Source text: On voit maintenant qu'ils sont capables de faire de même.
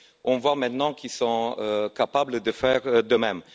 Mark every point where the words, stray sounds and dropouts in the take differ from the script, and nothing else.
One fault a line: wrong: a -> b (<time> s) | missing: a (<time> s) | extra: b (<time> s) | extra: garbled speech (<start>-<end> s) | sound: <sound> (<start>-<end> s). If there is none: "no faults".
no faults